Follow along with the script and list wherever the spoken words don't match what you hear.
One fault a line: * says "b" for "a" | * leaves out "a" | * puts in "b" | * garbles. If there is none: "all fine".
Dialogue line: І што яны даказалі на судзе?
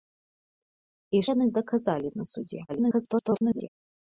* leaves out "што"
* garbles